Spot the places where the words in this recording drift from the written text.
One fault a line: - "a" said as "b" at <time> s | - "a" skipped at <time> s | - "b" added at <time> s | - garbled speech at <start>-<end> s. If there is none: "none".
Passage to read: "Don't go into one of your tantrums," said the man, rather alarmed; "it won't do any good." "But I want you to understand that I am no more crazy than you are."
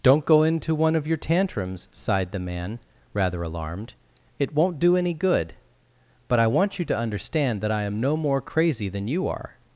- "said" said as "sighed" at 1.9 s